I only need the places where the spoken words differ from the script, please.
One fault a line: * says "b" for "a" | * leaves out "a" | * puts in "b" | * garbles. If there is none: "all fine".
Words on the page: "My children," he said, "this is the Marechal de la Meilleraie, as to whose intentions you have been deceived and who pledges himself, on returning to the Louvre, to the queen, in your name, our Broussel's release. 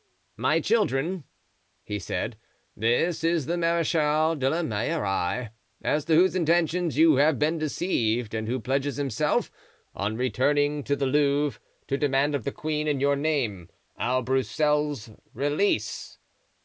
* puts in "demand of"